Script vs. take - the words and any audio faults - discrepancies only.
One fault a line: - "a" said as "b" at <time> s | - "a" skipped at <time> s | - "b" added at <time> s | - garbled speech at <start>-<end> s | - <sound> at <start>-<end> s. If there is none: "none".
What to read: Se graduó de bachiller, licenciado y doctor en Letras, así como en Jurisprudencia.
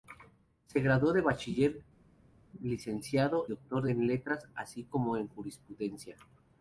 - "y" skipped at 3.5 s